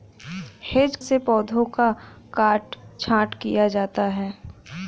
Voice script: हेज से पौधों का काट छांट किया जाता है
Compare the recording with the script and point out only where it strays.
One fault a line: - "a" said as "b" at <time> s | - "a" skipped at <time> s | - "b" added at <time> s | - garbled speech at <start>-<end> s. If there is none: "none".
none